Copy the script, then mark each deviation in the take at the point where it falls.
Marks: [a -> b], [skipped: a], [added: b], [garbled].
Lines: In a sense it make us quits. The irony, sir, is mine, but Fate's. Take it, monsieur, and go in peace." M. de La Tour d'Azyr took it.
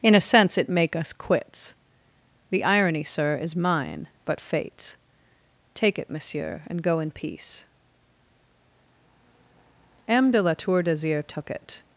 In a sense it make us quits. The irony, sir, is mine, but Fate's. Take it, monsieur, and go in peace." M. de La Tour d'Azyr took it.